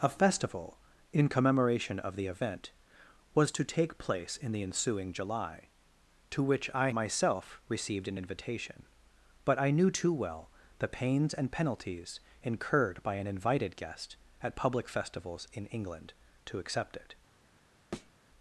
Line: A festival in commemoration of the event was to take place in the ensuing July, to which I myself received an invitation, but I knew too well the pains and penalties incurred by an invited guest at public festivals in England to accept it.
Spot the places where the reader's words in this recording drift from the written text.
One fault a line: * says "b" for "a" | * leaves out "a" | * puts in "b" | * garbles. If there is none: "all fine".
all fine